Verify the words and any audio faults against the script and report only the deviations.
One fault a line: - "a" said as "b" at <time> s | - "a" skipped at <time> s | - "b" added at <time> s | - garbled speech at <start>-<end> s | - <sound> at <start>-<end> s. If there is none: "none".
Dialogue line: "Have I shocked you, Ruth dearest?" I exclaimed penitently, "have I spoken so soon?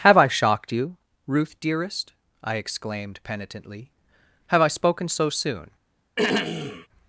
- throat clearing at 6.2-6.9 s